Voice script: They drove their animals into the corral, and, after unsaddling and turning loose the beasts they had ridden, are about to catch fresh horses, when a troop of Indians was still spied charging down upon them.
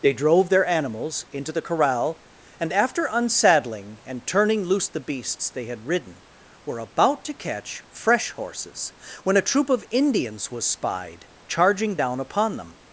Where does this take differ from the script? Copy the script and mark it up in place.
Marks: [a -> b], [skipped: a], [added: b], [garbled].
They drove their animals into the corral, and, after unsaddling and turning loose the beasts they had ridden, [are -> were] about to catch fresh horses, when a troop of Indians was [skipped: still] spied charging down upon them.